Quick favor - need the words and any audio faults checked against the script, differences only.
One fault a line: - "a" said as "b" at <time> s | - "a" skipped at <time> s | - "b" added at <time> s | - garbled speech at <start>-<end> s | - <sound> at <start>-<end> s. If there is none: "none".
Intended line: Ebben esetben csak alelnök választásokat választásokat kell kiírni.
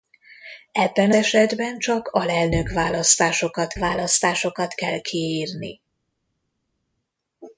none